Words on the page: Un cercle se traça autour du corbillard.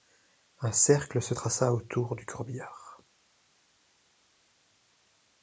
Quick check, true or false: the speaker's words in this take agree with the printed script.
true